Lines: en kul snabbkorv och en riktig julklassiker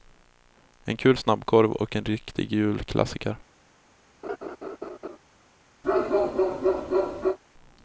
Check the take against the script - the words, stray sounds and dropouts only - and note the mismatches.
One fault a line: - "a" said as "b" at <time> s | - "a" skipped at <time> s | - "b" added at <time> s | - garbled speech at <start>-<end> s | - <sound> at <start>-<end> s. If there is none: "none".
- laugh at 4.2-5.2 s
- bark at 5.8-7.4 s